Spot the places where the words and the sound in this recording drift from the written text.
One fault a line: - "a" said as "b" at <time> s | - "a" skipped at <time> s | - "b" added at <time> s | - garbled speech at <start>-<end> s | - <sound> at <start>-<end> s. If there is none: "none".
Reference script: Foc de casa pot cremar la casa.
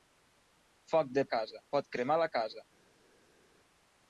none